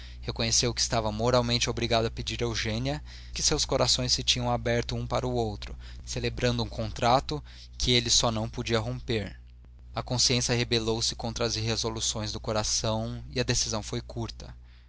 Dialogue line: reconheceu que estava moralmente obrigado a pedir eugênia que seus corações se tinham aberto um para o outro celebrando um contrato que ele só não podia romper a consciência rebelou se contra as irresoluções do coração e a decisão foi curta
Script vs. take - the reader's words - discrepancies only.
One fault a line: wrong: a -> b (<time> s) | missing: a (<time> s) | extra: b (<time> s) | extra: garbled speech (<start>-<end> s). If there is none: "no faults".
no faults